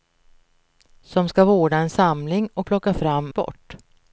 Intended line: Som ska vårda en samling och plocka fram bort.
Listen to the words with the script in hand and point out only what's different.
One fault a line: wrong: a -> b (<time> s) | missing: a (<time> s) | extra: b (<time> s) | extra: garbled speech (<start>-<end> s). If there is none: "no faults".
no faults